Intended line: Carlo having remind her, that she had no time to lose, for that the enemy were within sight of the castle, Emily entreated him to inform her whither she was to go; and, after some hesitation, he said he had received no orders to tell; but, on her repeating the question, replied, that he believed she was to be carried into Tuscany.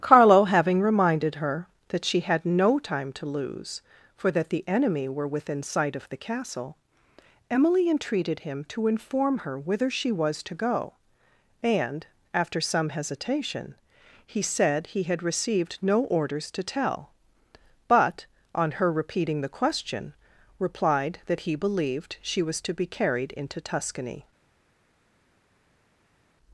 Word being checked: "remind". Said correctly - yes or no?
no